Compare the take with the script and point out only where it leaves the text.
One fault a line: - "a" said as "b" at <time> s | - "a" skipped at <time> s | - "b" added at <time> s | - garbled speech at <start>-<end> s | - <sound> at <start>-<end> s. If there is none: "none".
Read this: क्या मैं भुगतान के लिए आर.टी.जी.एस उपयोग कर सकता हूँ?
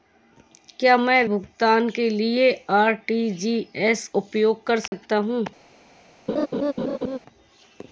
- dropout at 4.9-4.9 s
- laugh at 6.3-7.2 s